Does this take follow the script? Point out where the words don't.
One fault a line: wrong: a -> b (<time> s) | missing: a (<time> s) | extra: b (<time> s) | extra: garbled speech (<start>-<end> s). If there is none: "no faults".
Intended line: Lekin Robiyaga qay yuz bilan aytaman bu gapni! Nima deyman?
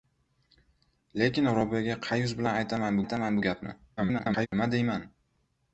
extra: aytaman (3.0 s)
extra: garbled speech (4.0-4.5 s)